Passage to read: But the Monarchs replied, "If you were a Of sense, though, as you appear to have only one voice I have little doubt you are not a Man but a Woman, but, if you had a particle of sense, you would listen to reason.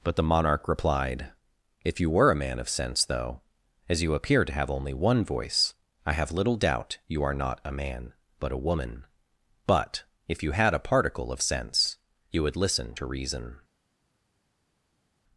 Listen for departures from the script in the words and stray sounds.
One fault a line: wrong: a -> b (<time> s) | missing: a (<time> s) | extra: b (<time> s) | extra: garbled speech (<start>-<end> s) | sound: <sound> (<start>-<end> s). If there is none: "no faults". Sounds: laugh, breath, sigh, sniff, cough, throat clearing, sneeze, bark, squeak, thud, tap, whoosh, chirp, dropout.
wrong: Monarchs -> Monarch (0.2 s)
extra: Man (2.4 s)